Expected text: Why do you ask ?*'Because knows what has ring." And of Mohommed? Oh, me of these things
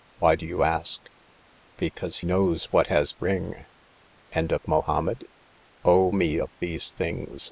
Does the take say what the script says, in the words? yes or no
yes